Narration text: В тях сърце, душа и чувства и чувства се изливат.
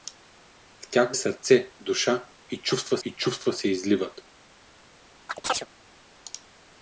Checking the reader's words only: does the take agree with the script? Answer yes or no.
yes